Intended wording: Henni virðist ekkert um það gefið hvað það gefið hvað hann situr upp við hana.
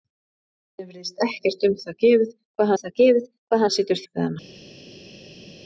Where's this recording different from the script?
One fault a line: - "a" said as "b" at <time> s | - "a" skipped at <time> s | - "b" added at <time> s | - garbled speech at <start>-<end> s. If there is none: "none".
none